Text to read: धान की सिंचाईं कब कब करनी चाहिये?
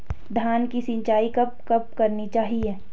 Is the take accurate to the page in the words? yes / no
yes